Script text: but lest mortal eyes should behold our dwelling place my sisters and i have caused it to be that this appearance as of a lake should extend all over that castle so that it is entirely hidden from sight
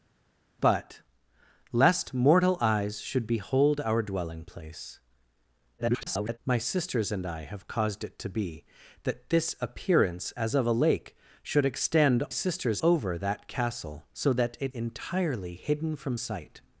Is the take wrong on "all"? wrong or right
wrong